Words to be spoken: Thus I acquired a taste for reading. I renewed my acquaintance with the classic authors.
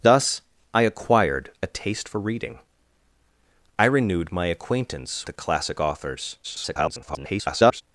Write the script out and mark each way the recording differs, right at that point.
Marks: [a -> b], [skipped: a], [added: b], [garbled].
Thus I acquired a taste for reading. I renewed my acquaintance [skipped: with] the classic authors. [garbled]